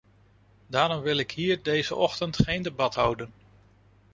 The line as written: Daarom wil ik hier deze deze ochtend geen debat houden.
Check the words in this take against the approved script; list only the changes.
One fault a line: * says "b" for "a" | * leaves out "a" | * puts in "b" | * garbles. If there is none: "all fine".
* leaves out "deze"